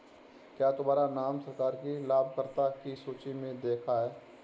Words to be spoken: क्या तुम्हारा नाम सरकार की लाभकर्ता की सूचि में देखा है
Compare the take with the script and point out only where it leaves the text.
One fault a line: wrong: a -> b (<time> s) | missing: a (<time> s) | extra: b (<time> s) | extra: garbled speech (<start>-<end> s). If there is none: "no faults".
no faults